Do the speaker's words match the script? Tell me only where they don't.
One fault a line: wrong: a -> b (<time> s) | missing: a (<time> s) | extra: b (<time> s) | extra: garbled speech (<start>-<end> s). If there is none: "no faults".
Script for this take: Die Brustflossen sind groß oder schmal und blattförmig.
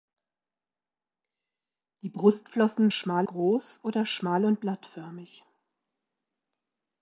wrong: sind -> schmal (2.9 s)